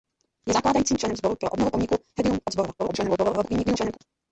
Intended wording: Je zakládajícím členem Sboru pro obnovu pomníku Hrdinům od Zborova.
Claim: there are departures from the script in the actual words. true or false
true